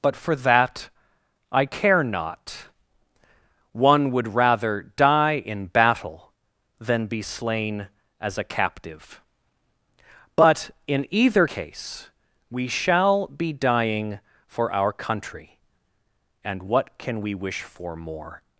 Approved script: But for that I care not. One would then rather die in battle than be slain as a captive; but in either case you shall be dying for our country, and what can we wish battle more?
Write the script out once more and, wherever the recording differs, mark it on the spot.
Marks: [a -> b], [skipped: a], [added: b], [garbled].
But for that I care not. One would [skipped: then] rather die in battle than be slain as a captive; but in either case [you -> we] shall be dying for our country, and what can we wish [battle -> for] more?